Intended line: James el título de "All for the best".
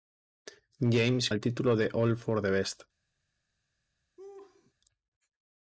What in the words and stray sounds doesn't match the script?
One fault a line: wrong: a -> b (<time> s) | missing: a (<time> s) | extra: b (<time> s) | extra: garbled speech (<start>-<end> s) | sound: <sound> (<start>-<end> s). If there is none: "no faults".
sound: laugh (4.2-4.7 s)